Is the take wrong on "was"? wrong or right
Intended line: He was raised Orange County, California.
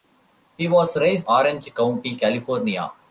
right